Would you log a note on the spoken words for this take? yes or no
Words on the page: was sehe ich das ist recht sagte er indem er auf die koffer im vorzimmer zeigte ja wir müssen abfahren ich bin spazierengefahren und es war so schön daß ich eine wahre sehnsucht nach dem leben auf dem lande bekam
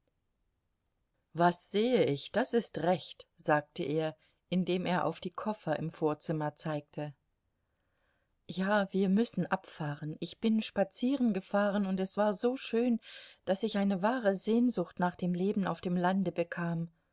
no